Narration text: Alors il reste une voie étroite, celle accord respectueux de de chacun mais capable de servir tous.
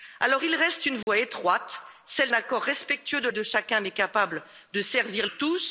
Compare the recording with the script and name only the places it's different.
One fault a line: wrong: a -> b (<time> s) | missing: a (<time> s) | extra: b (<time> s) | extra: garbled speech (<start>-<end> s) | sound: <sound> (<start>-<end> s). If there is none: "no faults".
sound: dropout (1.0-1.1 s)